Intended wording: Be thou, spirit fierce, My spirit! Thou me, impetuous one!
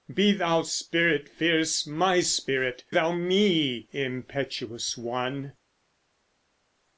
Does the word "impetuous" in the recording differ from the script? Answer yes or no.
no